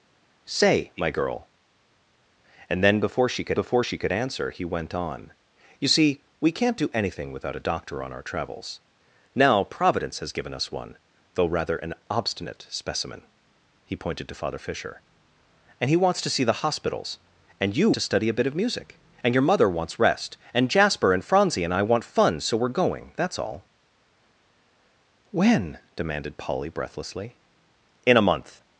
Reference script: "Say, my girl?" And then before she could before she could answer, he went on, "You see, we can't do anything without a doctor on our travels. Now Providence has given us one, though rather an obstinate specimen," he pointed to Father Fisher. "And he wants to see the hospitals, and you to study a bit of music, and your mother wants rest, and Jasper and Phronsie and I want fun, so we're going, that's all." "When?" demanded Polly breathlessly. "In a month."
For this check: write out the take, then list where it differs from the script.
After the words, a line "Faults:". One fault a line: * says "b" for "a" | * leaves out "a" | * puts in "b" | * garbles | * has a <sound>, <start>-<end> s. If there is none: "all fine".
"Say, my girl?" And then before she could before she could answer, he went on, "You see, we can't do anything without a doctor on our travels. Now Providence has given us one, though rather an obstinate specimen," he pointed to Father Fisher. "And he wants to see the hospitals, and you to study a bit of music, and your mother wants rest, and Jasper and Phronsie and I want fun, so we're going, that's all." "When?" demanded Polly breathlessly. "In a month."
Faults:
all fine